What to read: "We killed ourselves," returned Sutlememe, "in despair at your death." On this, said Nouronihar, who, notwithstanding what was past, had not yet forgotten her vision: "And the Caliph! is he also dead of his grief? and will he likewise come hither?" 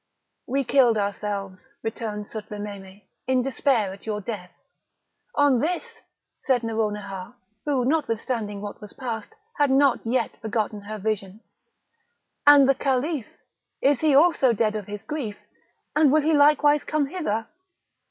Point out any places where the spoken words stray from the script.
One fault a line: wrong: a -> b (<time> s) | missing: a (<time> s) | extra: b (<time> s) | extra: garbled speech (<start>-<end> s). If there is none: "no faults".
no faults